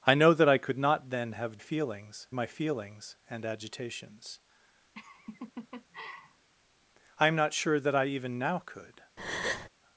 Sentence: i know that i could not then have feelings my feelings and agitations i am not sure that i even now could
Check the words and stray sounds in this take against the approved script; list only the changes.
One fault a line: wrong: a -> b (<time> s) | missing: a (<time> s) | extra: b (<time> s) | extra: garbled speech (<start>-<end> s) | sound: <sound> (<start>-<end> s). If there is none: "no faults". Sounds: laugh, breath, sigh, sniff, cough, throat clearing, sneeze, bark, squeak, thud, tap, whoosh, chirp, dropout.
sound: laugh (4.9-6.5 s)
sound: breath (9.2-9.7 s)